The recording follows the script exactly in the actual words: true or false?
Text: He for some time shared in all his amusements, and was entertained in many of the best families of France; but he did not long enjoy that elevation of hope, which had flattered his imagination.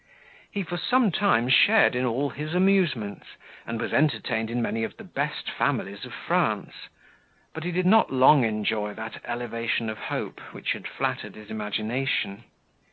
true